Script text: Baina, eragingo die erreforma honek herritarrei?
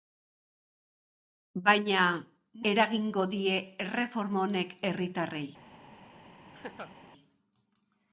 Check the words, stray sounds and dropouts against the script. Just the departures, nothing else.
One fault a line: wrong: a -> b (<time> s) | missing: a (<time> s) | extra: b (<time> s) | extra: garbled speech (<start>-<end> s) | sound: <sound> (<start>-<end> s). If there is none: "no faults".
sound: laugh (6.5-6.9 s)